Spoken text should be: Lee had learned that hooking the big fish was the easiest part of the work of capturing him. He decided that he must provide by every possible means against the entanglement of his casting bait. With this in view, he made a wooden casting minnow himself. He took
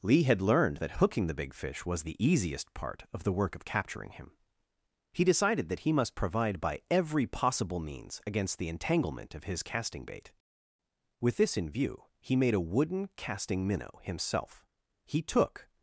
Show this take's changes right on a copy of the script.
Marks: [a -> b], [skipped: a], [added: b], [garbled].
Lee had learned that hooking the big fish was the easiest part of the work of capturing him. He decided that he must provide by every possible means against the entanglement of his casting bait. With this in view, he made a wooden casting minnow himself. He took